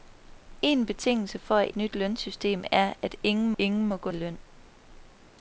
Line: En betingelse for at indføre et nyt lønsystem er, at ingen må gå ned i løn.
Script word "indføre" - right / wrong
wrong